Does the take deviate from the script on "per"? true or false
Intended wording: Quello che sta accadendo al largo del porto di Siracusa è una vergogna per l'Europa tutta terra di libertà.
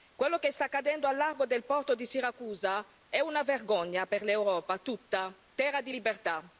false